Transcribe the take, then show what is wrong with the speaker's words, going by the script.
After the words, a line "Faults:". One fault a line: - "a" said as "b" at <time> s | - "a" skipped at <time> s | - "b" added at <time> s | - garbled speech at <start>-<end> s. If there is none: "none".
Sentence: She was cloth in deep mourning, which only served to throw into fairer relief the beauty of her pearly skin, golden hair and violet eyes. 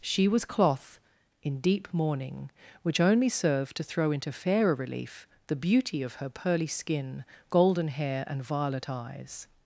She was cloth in deep mourning, which only served to throw into fairer relief the beauty of her pearly skin, golden hair and violet eyes.
Faults:
none